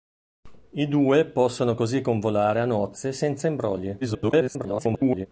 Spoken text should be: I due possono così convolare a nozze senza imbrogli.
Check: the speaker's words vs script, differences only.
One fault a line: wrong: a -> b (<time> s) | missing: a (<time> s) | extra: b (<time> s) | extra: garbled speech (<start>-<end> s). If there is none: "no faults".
extra: garbled speech (4.0-5.3 s)